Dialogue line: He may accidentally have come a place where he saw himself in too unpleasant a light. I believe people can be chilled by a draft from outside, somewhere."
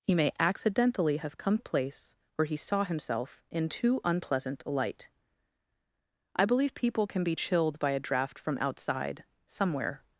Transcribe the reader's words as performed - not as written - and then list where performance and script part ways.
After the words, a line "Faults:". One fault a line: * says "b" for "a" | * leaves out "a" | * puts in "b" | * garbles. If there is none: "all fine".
He may accidentally have come a place where he saw himself in too unpleasant a light. I believe people can be chilled by a draft from outside, somewhere."
Faults:
all fine